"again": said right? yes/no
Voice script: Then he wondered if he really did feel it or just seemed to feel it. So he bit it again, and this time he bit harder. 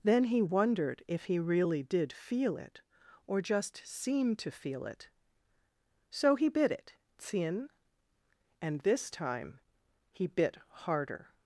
no